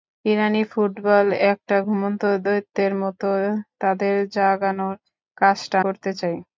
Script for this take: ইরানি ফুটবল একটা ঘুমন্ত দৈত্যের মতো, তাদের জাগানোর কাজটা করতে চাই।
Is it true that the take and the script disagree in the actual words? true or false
false